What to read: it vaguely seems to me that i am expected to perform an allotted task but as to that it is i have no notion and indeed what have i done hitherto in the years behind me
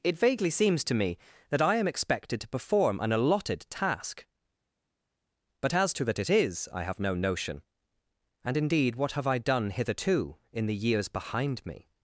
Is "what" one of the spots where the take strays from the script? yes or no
no